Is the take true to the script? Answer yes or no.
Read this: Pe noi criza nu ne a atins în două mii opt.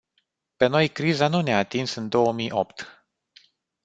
yes